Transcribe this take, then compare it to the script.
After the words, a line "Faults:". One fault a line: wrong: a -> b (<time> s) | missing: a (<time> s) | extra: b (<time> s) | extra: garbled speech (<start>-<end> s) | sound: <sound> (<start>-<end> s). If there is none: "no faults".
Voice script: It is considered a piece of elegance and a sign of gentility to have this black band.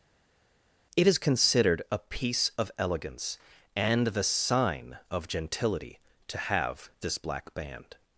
It is considered a piece of elegance and the sign of gentility to have this black band.
Faults:
wrong: a -> the (4.1 s)